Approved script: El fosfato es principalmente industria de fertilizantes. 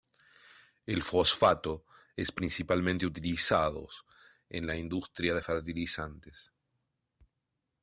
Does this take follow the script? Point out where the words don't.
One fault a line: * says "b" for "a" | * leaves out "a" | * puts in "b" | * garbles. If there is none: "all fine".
* puts in "utilizados en la"